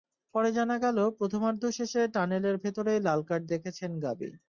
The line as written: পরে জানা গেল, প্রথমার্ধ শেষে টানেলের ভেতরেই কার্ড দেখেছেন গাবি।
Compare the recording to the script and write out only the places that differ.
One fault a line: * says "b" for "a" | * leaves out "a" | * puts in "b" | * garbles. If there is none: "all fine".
* puts in "লাল"